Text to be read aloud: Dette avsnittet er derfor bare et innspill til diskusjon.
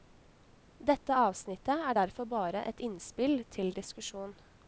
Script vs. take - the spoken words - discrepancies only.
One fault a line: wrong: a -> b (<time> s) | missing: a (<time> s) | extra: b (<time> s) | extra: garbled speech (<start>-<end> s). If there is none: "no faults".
no faults